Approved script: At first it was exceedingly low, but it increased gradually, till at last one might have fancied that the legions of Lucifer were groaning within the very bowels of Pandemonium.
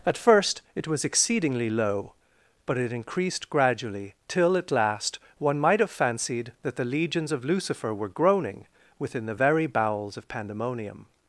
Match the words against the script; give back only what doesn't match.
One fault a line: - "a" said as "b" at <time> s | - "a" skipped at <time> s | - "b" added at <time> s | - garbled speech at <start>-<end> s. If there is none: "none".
none